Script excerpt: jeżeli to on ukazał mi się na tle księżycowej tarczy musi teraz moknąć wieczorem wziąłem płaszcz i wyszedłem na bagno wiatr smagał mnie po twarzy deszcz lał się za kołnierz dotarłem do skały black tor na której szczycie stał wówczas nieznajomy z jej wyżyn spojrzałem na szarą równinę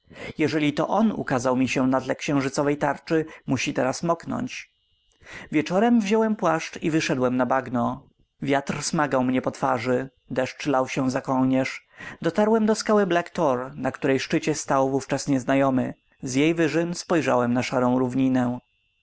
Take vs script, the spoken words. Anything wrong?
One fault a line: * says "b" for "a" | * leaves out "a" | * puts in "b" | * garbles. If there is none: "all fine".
all fine